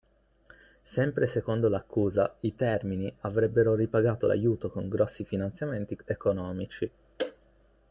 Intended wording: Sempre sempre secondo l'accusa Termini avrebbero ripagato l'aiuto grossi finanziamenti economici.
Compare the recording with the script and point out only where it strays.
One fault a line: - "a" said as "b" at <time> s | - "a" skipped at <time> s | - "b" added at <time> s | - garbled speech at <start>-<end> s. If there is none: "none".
- "sempre" skipped at 1.3 s
- "i" added at 2.4 s
- "con" added at 4.7 s